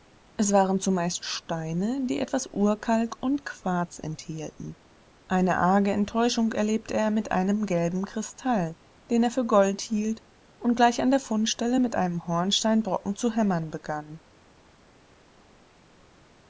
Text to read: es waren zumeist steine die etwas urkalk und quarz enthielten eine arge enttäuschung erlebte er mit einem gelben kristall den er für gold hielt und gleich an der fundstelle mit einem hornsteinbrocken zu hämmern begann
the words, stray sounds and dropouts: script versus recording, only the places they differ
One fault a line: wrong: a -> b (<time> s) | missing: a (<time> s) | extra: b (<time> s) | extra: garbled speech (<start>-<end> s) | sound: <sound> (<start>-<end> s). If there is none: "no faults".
no faults